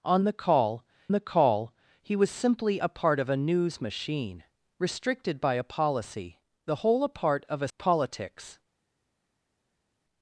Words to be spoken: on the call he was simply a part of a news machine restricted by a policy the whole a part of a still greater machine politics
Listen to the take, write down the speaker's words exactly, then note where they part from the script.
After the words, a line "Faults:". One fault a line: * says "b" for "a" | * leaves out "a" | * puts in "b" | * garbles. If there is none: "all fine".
on the call the call he was simply a part of a news machine restricted by a policy the whole a part of a politics
Faults:
* puts in "the call"
* leaves out "still greater machine"